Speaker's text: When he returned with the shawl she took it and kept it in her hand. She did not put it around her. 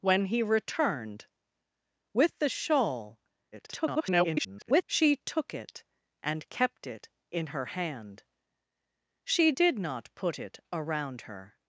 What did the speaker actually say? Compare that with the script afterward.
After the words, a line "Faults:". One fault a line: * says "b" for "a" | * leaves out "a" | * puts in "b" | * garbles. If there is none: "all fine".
When he returned with the shawl [garbled] she took it and kept it in her hand. She did not put it around her.
Faults:
* garbles